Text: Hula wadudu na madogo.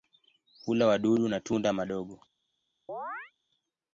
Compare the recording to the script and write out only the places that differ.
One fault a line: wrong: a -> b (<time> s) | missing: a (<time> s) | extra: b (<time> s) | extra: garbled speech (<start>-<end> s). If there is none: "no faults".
extra: tunda (1.4 s)